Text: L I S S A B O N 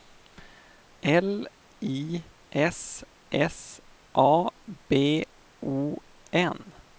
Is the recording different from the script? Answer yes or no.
no